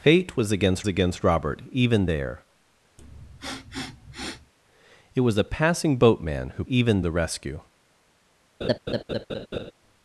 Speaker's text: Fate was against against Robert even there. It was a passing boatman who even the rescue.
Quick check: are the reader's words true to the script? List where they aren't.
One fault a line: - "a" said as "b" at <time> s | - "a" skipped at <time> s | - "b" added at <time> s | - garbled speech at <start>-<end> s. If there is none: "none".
none